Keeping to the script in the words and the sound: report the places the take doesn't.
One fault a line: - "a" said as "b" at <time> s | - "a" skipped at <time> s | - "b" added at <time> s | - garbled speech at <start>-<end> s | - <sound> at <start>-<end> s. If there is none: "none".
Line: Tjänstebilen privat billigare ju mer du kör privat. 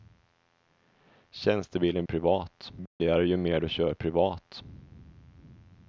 - dropout at 2.9-3.0 s